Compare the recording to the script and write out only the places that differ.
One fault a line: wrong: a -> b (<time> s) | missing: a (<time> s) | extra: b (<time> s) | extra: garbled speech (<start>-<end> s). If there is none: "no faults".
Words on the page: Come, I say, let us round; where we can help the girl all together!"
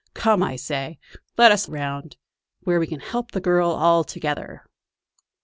no faults